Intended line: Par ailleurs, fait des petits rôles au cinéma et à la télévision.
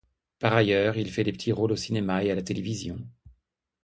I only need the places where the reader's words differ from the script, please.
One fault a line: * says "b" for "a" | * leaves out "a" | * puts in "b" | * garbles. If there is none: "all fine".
* puts in "il"